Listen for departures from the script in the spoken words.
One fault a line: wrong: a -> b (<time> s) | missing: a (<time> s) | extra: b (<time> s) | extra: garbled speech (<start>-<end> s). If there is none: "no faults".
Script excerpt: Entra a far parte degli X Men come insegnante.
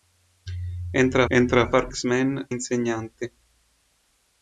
extra: entra (1.3 s)
missing: parte degli (1.9 s)
missing: come (2.5 s)